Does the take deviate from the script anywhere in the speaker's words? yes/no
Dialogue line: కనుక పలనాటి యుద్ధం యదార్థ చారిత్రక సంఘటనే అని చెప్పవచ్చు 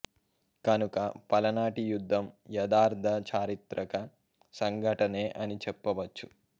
no